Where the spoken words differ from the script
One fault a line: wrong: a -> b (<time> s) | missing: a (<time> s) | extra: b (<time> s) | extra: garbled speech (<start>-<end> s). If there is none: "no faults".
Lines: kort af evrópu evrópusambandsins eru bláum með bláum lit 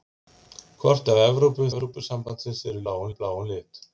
no faults